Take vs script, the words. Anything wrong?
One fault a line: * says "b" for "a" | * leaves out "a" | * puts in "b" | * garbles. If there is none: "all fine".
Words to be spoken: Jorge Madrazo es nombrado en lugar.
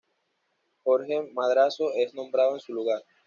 * puts in "su"